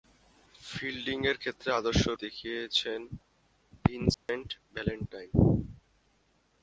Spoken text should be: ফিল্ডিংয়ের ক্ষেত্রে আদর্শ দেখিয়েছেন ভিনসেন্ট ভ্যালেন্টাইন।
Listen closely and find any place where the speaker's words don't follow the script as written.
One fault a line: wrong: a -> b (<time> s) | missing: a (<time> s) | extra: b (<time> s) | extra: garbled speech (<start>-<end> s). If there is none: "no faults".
no faults